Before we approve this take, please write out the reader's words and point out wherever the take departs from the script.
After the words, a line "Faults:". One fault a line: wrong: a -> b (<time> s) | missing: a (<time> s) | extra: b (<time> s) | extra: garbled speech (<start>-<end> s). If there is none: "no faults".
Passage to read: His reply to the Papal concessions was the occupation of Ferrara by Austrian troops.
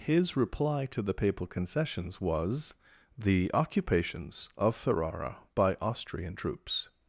His reply to the Papal concessions was the occupations of Ferrara by Austrian troops.
Faults:
wrong: occupation -> occupations (3.5 s)